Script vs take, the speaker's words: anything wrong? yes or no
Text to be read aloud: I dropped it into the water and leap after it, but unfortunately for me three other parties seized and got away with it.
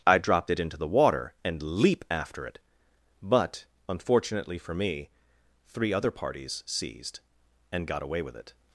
no